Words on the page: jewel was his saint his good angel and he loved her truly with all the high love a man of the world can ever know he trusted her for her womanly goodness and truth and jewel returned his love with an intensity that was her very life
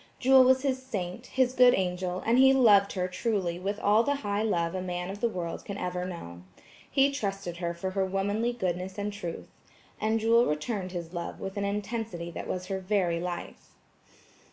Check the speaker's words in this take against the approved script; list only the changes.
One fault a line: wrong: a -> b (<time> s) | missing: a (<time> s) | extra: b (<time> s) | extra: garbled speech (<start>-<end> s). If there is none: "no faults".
no faults